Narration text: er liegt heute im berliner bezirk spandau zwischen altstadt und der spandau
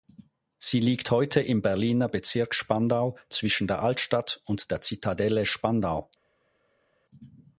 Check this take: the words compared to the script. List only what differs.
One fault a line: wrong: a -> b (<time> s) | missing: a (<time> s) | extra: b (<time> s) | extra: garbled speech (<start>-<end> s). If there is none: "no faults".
wrong: er -> sie (0.6 s)
extra: der (3.7 s)
extra: zitadelle (4.8 s)